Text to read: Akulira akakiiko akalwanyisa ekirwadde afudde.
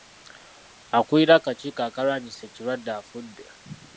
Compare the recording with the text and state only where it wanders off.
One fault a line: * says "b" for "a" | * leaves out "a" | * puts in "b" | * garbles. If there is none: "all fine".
all fine